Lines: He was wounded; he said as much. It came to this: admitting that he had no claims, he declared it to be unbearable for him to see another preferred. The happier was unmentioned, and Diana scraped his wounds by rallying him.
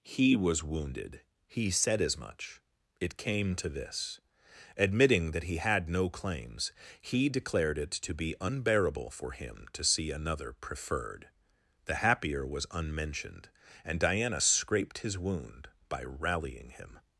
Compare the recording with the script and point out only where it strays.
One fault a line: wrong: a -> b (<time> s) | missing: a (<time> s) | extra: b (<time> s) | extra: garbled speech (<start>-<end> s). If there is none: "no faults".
wrong: wounds -> wound (15.2 s)